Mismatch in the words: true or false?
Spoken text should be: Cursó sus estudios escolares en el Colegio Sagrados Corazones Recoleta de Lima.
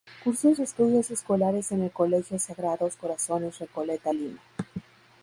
true